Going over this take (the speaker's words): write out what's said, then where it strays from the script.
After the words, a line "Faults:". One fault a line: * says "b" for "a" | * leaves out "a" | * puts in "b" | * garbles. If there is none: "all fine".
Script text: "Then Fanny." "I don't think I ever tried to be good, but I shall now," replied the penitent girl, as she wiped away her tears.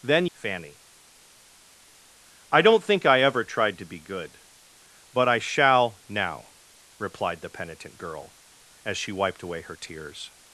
"Then Fanny." "I don't think I ever tried to be good, but I shall now," replied the penitent girl, as she wiped away her tears.
Faults:
all fine